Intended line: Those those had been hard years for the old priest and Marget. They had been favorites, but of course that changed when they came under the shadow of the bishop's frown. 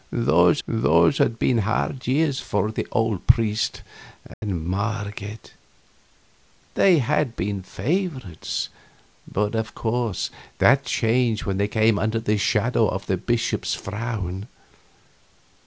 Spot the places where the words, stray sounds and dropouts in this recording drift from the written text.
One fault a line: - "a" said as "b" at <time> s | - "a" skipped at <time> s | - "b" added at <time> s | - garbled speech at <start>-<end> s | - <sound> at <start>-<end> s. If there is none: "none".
- dropout at 4.3-4.4 s